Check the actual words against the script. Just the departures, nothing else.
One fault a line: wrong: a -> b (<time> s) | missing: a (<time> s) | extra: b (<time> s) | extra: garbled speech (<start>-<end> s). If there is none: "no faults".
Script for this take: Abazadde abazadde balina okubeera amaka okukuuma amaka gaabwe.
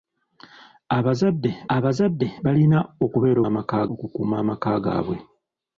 no faults